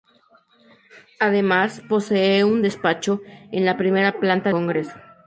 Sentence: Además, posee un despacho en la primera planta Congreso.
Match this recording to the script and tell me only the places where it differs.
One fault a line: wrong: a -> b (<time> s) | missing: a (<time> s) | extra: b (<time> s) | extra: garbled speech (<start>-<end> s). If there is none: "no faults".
no faults